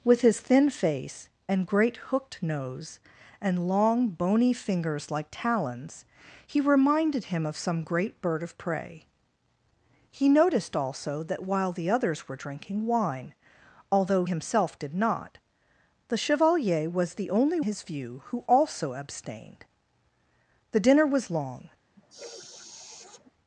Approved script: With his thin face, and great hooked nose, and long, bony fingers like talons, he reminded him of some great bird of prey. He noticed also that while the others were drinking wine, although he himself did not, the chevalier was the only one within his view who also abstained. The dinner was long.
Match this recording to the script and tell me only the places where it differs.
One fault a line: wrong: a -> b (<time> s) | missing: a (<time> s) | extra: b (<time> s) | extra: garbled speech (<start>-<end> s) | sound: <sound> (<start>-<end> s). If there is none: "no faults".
missing: he (14.2 s)
missing: one within (17.6 s)
sound: sniff (22.0-23.3 s)